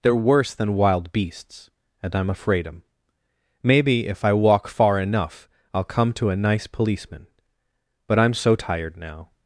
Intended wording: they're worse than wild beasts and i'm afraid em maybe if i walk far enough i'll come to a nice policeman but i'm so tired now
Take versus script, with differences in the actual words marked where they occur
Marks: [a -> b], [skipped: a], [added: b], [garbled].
they're worse than wild beasts and i'm afraid em maybe if i walk far enough i'll come to a nice policeman but i'm so tired now